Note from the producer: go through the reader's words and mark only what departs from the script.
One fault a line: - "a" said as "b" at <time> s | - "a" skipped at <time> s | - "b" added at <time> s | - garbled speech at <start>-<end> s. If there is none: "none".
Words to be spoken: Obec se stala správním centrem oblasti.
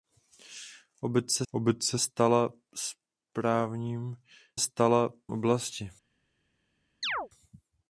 - "obec se" added at 1.5 s
- "centrem" said as "stala" at 4.6 s